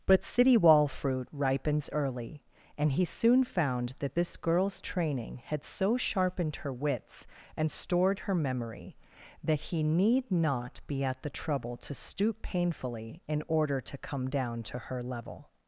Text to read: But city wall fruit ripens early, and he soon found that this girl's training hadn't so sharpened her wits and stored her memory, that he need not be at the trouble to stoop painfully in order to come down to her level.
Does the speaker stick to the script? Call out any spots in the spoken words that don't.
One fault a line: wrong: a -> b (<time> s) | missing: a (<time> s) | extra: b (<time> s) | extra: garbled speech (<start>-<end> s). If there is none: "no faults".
wrong: hadn't -> had (5.4 s)